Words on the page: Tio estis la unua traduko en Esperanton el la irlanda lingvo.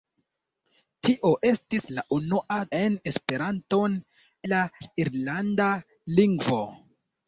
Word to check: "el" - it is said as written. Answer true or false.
false